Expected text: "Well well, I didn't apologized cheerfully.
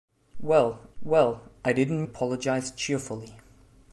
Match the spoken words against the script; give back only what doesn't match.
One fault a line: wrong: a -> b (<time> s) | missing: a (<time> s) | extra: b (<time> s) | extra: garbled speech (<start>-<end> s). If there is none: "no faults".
no faults